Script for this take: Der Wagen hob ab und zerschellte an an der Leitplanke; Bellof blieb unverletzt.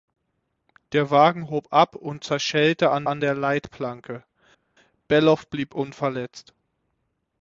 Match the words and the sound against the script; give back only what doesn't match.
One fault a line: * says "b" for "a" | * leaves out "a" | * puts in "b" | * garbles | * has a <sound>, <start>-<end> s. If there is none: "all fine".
all fine